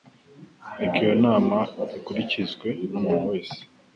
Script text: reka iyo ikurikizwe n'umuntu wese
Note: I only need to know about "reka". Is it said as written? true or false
true